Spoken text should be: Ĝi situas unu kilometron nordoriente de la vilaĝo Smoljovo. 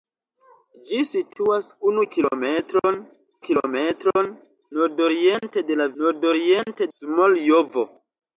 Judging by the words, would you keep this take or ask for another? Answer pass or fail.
fail